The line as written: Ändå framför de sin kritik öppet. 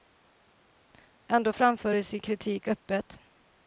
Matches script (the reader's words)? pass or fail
pass